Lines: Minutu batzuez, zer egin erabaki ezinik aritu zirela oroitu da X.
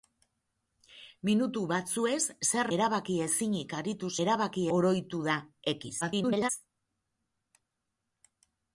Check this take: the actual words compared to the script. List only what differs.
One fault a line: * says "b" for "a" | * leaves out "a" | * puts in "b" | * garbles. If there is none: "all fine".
* leaves out "egin"
* says "erabaki" for "zirela"
* garbles